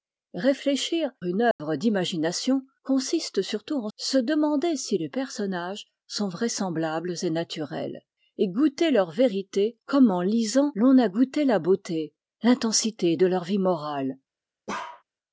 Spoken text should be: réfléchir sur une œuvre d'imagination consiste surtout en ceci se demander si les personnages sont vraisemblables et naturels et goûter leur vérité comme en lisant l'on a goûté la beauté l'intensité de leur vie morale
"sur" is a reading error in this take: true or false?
true